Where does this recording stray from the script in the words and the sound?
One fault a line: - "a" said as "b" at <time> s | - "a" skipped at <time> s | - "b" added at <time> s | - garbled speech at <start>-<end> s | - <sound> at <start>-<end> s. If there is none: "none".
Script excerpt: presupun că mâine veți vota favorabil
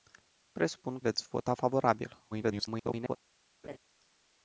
- "că mâine" skipped at 1.0 s
- garbled speech at 2.3-3.2 s
- laugh at 3.6-3.8 s